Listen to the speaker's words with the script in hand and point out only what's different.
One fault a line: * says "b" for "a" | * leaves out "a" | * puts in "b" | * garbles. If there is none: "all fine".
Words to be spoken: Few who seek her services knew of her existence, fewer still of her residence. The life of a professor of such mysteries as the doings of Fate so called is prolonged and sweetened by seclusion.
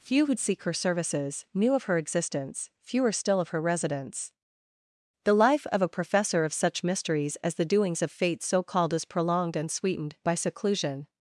all fine